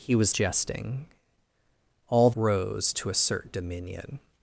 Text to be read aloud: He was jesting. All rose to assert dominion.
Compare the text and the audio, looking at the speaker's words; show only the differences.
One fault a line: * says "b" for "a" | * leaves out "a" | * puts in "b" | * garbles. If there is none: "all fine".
all fine